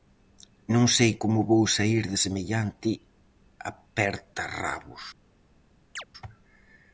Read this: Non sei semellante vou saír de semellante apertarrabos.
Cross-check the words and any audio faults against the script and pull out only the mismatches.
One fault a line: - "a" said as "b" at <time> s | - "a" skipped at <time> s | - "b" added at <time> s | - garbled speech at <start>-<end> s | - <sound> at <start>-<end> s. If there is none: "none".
- "semellante" said as "como" at 1.2 s
- chirp at 6.0-6.0 s